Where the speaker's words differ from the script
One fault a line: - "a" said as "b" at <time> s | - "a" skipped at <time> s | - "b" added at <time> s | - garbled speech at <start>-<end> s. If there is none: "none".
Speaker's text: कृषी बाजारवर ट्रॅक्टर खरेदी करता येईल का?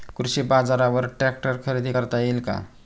none